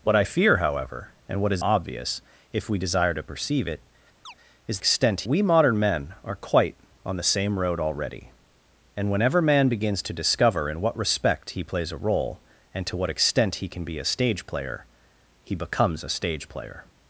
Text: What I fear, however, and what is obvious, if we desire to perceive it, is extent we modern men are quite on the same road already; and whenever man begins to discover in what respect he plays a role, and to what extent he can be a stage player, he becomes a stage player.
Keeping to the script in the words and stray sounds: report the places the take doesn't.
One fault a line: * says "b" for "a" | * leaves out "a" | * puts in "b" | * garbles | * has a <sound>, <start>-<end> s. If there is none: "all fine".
* has a chirp, 4.2-4.3 s